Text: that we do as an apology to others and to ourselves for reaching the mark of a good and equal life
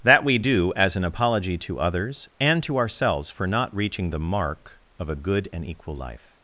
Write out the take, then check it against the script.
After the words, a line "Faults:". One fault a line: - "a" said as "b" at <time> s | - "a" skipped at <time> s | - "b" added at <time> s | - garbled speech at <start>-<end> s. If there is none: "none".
that we do as an apology to others and to ourselves for not reaching the mark of a good and equal life
Faults:
- "not" added at 3.5 s